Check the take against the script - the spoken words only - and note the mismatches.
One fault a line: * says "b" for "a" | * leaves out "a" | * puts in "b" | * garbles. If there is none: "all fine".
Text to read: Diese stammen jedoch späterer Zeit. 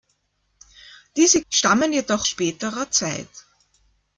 all fine